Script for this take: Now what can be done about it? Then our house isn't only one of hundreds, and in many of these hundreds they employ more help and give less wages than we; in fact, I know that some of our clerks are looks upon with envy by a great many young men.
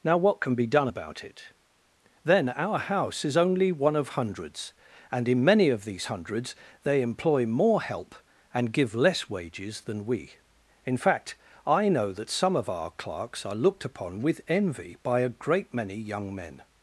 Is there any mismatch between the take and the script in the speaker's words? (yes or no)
yes